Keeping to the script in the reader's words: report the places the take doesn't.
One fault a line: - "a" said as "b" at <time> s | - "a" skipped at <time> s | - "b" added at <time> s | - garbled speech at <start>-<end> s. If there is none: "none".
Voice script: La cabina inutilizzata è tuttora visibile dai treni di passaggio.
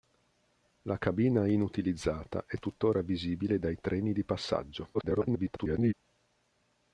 - garbled speech at 4.9-5.9 s